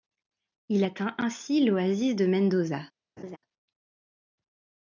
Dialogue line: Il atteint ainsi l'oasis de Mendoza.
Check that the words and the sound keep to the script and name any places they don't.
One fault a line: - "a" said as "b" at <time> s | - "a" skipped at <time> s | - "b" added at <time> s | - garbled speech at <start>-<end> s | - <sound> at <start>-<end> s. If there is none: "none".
- laugh at 3.2-3.4 s